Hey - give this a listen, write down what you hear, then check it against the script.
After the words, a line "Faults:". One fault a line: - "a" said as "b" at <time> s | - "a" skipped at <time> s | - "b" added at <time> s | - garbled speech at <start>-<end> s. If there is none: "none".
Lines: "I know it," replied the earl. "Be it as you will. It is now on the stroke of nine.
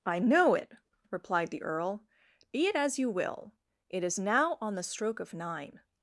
"I know it," replied the earl. "Be it as you will. It is now on the stroke of nine.
Faults:
none